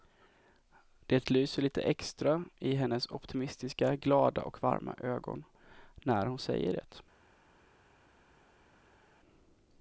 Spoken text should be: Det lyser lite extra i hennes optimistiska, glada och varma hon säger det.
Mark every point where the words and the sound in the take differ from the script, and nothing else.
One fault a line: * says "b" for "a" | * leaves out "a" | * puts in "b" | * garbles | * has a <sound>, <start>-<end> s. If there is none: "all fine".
* puts in "ögon när"